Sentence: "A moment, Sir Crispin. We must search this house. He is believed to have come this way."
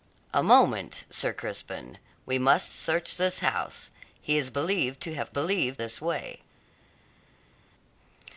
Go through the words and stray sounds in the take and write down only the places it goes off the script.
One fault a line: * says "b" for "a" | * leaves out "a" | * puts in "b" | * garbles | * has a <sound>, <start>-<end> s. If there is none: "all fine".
* says "believed" for "come"